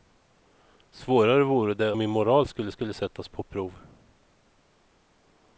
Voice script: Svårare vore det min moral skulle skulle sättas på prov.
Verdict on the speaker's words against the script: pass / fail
pass